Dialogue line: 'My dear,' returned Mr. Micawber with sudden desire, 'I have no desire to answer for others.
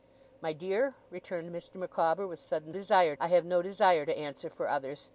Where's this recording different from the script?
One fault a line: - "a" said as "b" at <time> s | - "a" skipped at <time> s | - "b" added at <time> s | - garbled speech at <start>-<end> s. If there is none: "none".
none